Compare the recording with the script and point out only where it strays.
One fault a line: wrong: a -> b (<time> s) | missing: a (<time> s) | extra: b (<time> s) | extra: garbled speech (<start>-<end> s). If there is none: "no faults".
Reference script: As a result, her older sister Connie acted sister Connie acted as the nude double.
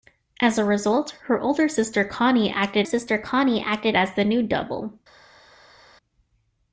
no faults